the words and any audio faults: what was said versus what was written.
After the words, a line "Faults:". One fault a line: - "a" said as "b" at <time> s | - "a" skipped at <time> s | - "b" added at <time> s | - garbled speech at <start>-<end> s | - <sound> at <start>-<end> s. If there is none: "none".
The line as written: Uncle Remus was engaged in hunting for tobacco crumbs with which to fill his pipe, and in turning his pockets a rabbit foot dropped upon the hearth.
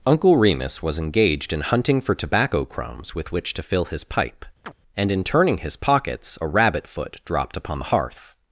Uncle Remus was engaged in hunting for tobacco crumbs with which to fill his pipe, and in turning his pockets a rabbit foot dropped upon the hearth.
Faults:
- chirp at 4.6-4.7 s